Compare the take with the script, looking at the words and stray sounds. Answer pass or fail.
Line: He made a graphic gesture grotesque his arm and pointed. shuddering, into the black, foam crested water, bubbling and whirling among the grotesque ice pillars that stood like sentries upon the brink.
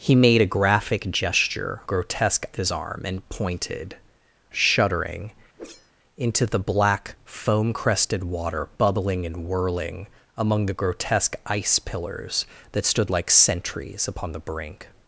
fail